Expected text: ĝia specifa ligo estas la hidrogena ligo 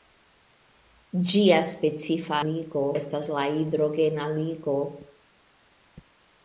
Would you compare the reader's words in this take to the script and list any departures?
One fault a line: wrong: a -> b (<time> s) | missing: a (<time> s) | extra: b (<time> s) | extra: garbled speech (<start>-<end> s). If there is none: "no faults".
no faults